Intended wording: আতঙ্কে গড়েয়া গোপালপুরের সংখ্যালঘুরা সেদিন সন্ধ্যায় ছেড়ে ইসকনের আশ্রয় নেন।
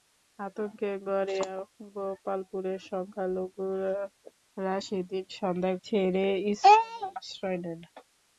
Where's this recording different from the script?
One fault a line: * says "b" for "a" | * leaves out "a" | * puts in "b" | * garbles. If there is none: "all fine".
all fine